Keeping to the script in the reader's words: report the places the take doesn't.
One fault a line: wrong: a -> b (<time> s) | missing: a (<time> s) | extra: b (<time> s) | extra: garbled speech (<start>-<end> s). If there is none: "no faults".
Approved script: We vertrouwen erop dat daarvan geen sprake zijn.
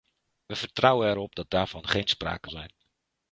no faults